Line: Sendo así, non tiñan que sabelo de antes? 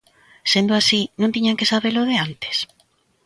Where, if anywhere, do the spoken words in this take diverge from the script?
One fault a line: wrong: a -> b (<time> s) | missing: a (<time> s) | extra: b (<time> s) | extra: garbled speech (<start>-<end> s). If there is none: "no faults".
no faults